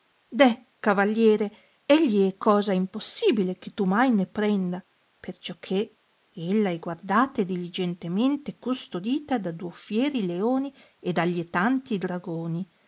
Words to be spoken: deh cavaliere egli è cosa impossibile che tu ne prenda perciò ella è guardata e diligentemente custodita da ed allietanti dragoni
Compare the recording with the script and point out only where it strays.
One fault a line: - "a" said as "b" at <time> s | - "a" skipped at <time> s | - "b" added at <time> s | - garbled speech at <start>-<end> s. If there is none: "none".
- "mai" added at 3.9 s
- "che" added at 5.6 s
- "duo fieri leoni" added at 9.5 s